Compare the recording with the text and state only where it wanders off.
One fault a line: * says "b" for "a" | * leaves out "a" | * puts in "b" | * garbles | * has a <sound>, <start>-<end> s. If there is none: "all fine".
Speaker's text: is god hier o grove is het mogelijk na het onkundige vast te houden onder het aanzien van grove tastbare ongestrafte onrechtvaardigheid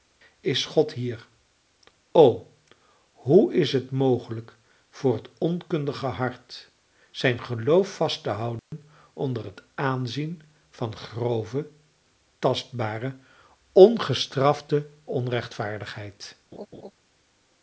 * says "hoe" for "grove"
* says "voor" for "na"
* puts in "hart zijn geloof"
* has a dropout, 8.6-8.7 s
* has a laugh, 16.5-16.9 s